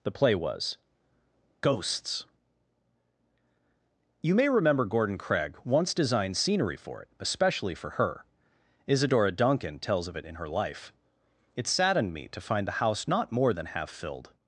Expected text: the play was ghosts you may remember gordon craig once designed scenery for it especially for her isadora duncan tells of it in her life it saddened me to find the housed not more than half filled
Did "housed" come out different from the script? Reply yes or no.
yes